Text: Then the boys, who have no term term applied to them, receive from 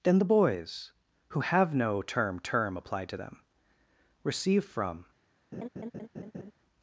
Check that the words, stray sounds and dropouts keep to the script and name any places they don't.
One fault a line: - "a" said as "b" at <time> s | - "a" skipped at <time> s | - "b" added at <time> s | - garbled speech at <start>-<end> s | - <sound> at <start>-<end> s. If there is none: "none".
- laugh at 5.5-6.5 s